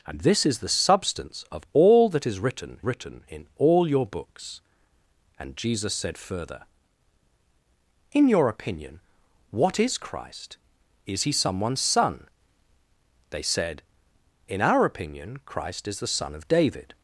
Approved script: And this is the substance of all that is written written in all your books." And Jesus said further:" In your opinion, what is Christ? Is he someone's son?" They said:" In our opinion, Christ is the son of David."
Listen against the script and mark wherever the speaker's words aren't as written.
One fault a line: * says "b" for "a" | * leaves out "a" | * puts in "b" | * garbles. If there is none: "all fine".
all fine